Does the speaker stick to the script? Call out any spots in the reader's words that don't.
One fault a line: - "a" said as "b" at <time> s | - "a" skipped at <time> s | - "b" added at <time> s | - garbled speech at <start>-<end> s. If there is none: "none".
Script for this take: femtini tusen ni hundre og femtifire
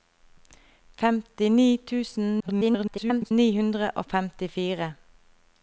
- garbled speech at 2.4-3.3 s